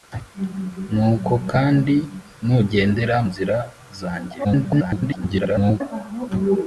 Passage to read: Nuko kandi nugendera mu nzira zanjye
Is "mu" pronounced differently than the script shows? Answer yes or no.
yes